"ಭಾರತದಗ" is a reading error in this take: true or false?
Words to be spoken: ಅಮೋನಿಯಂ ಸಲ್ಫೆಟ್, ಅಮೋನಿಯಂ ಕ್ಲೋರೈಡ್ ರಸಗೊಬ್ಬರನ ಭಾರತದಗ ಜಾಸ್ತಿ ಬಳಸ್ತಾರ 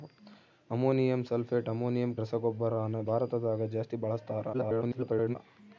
false